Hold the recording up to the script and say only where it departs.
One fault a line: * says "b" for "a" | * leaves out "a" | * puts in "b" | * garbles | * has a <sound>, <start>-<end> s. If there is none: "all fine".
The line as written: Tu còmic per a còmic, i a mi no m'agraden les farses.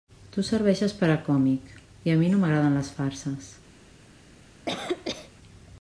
* says "serveixes" for "còmic"
* has a cough, 4.7-5.3 s